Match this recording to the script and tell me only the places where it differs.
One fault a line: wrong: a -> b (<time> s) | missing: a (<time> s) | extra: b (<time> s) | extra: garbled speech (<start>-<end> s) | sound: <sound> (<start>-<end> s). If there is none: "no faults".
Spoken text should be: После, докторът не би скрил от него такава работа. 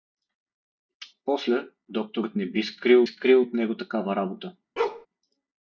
extra: скрил (3.0 s)
sound: bark (4.8-5.1 s)